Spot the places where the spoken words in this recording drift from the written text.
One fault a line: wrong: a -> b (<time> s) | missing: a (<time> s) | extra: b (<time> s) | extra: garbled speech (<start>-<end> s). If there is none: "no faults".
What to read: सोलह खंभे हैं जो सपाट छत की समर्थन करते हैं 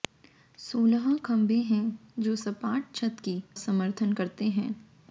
no faults